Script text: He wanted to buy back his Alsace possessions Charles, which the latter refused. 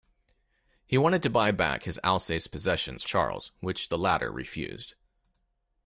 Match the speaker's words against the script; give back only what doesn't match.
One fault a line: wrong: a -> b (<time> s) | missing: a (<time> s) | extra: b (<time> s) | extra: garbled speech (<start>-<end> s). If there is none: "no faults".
no faults